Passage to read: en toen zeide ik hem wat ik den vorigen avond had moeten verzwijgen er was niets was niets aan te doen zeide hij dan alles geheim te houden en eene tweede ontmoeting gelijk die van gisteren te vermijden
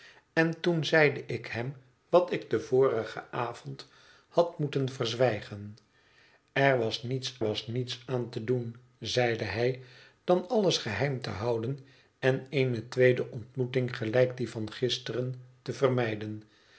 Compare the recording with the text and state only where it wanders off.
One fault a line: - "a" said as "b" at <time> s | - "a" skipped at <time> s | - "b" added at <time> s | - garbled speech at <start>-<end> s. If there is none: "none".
none